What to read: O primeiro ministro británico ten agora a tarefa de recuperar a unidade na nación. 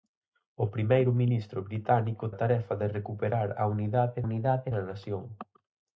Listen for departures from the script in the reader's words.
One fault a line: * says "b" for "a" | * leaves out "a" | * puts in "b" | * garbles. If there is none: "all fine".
* leaves out "ten agora"
* puts in "unidade"